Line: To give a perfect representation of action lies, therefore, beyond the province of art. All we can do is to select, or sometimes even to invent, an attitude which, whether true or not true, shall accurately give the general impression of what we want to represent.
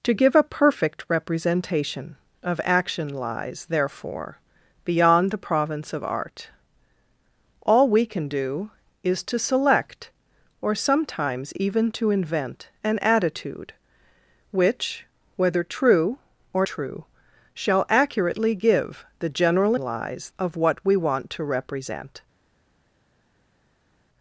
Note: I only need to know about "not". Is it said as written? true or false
false